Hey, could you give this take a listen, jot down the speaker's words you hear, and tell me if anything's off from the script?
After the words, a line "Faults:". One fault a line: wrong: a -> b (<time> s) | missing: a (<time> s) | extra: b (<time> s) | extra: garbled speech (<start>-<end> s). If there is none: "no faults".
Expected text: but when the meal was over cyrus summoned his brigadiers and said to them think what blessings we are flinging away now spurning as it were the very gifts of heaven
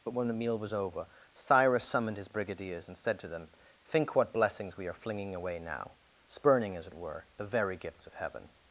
but when the meal was over cyrus summoned his brigadiers and said to them think what blessings we are flinging away now spurning as it were the very gifts of heaven
Faults:
no faults